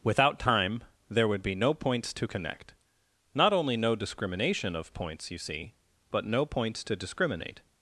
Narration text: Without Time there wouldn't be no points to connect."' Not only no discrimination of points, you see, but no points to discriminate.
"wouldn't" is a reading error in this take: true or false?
true